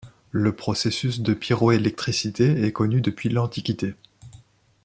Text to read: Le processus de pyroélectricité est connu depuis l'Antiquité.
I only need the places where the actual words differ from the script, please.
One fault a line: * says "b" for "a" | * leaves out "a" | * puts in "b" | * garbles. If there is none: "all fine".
all fine